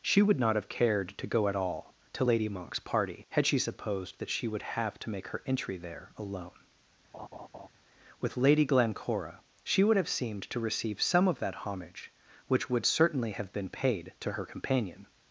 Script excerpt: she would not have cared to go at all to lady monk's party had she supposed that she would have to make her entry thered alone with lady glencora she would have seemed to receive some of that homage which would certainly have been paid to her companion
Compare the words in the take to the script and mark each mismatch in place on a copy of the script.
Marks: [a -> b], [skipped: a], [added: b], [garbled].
she would not have cared to go at all to lady monk's party had she supposed that she would have to make her entry [thered -> there] alone with lady glencora she would have seemed to receive some of that homage which would certainly have been paid to her companion